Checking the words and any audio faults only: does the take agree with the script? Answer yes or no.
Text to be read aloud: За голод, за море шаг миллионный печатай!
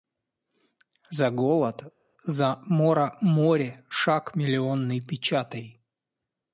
no